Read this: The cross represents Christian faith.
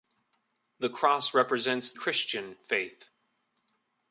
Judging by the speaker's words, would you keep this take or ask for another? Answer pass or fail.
pass